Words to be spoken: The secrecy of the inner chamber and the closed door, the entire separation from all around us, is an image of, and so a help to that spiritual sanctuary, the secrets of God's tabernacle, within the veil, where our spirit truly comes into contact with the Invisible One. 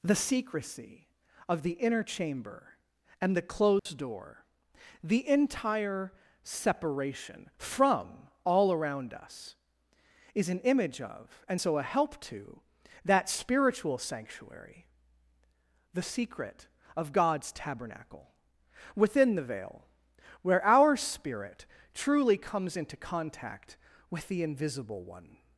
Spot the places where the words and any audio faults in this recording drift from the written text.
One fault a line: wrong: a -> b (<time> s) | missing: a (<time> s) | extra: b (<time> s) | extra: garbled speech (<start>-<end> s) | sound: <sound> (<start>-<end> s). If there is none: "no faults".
sound: dropout (3.8-3.9 s)
wrong: secrets -> secret (16.0 s)